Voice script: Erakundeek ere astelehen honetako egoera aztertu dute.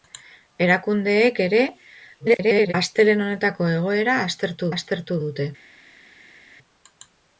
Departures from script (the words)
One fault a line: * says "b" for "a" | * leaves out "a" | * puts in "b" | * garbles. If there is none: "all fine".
* garbles
* puts in "aztertu"